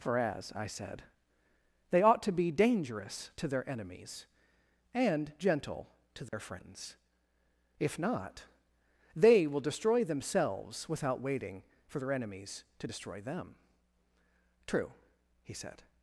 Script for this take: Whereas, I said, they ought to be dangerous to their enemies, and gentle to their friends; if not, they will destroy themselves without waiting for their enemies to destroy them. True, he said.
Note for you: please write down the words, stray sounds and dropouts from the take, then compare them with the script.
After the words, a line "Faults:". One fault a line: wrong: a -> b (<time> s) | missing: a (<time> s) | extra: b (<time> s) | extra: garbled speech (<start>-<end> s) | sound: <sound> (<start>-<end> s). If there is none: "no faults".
For as, I said, they ought to be dangerous to their enemies, and gentle to their friends; if not, they will destroy themselves without waiting for their enemies to destroy them. True, he said.
Faults:
wrong: Whereas -> For as (0.0 s)
sound: dropout (6.3-6.3 s)